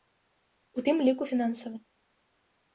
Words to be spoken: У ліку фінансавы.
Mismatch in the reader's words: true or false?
true